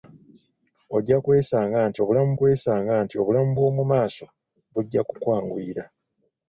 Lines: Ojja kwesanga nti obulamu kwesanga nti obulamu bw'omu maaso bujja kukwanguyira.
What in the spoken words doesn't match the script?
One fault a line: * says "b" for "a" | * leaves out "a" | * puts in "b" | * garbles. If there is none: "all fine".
all fine